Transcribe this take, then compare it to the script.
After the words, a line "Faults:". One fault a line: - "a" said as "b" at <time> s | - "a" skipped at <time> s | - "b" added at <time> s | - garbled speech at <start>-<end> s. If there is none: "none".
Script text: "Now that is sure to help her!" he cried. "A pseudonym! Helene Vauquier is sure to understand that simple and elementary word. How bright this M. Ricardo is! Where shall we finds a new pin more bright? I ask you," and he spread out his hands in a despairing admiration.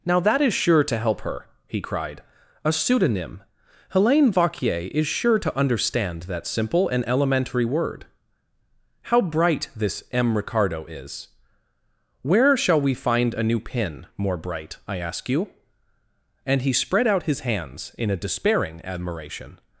"Now that is sure to help her!" he cried. "A pseudonym! Helene Vauquier is sure to understand that simple and elementary word. How bright this M. Ricardo is! Where shall we find a new pin more bright? I ask you," and he spread out his hands in a despairing admiration.
Faults:
- "finds" said as "find" at 12.9 s